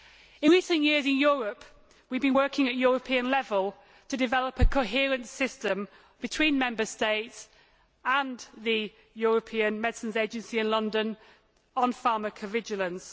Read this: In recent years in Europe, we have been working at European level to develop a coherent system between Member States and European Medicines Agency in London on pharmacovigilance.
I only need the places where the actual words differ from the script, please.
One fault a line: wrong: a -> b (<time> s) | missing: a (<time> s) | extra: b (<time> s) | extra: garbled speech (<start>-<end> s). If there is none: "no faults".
extra: the (8.6 s)